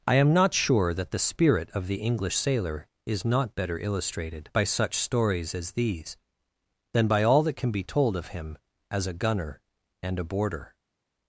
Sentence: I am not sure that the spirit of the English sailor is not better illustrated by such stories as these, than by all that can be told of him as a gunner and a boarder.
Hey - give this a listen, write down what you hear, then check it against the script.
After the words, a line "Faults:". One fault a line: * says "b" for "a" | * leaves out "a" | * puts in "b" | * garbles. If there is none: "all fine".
I am not sure that the spirit of the English sailor is not better illustrated by such stories as these, than by all that can be told of him as a gunner and a boarder.
Faults:
all fine